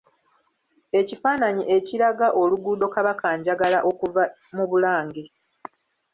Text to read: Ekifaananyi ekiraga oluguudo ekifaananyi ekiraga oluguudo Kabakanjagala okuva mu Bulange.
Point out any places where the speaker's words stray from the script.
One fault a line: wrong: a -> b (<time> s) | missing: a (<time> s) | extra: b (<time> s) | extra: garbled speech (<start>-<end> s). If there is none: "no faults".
missing: ekifaananyi ekiraga oluguudo (2.9 s)